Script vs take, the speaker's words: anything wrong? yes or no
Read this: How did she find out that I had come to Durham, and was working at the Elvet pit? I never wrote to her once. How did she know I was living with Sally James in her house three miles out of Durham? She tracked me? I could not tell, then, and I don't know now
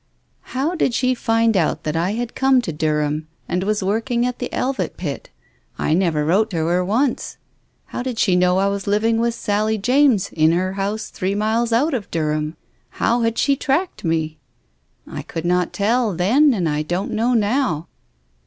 yes